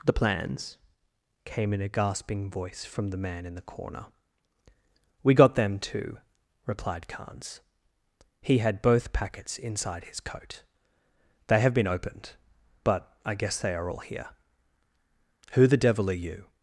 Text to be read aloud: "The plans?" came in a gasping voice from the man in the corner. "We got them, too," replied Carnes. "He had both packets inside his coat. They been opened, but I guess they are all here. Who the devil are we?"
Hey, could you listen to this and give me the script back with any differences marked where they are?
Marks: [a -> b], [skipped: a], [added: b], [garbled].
"The plans?" came in a gasping voice from the man in the corner. "We got them, too," replied Carnes. "He had both packets inside his coat. They [added: have] been opened, but I guess they are all here. Who the devil are [we?" -> you]